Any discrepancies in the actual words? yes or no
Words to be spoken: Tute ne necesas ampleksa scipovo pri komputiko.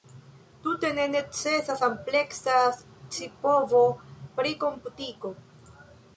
no